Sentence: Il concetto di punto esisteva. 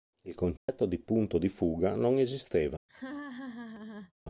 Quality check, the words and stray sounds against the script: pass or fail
fail